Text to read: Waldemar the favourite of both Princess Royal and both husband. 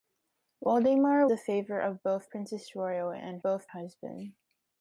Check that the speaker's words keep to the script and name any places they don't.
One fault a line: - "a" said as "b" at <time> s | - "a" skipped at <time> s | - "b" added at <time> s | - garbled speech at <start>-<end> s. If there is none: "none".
none